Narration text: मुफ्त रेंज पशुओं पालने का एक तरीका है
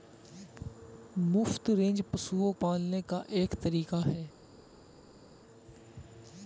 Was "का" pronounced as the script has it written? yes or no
yes